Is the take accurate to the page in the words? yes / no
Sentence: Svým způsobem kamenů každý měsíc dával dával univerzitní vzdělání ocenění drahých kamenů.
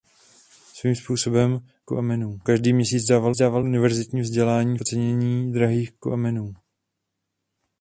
yes